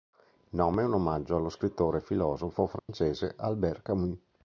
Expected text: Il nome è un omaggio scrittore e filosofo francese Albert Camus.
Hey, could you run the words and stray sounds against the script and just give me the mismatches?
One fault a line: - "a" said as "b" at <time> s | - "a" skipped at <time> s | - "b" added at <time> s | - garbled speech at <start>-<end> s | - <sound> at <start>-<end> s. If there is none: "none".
- "allo" added at 1.4 s
- dropout at 2.8-2.9 s